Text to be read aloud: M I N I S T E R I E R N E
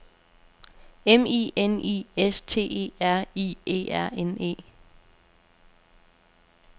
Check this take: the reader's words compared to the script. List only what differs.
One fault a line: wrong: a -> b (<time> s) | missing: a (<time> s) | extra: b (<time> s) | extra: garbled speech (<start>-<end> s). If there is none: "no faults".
no faults